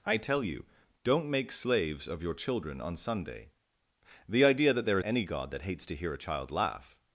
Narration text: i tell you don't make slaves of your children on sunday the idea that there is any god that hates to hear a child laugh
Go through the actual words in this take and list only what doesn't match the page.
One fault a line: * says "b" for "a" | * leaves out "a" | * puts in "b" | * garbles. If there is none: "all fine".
* leaves out "is"